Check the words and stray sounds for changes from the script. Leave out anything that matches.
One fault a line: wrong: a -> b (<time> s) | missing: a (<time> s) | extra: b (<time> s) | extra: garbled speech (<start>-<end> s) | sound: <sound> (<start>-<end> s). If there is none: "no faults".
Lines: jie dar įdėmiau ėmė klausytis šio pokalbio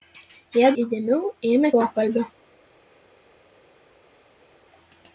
missing: dar (0.7 s)
missing: klausytis šio (1.7 s)